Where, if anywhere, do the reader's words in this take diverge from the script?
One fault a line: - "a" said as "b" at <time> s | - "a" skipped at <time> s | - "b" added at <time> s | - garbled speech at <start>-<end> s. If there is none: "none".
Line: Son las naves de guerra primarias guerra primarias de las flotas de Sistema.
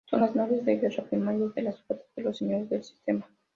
- "guerra primarias" skipped at 1.5 s
- "los Señores del" added at 2.2 s